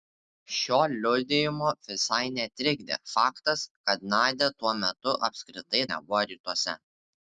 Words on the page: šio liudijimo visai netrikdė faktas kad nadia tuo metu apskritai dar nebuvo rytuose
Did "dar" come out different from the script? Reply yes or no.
yes